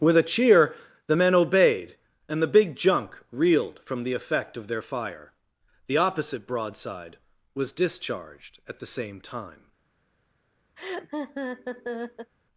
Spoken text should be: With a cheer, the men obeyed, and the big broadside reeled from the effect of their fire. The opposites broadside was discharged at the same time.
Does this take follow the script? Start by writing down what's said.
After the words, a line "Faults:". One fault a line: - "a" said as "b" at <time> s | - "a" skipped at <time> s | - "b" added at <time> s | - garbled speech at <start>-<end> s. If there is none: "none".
With a cheer, the men obeyed, and the big junk reeled from the effect of their fire. The opposite broadside was discharged at the same time.
Faults:
- "broadside" said as "junk" at 2.7 s
- "opposites" said as "opposite" at 6.0 s